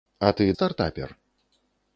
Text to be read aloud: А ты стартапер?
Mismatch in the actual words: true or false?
false